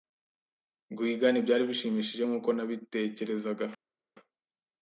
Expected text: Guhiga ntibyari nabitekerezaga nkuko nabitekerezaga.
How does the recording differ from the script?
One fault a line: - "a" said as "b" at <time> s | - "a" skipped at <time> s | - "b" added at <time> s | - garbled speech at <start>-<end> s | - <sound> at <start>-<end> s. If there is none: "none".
- "nabitekerezaga" said as "bishimishije" at 1.7 s